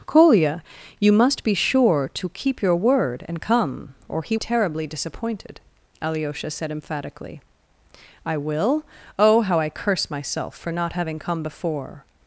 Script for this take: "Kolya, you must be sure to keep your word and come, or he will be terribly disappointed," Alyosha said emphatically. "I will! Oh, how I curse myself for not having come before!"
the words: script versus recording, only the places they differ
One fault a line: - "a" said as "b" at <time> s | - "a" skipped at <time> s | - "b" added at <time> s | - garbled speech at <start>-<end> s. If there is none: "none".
- "will be" skipped at 4.3 s